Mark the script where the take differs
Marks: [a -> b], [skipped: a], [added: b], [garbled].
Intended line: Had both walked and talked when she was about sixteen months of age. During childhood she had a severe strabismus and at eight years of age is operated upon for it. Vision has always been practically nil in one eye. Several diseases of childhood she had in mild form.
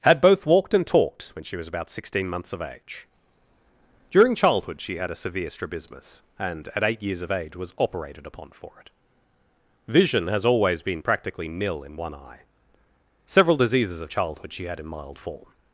Had both walked and talked when she was about sixteen months of age. During childhood she had a severe strabismus and at eight years of age [is -> was] operated upon for it. Vision has always been practically nil in one eye. Several diseases of childhood she had in mild form.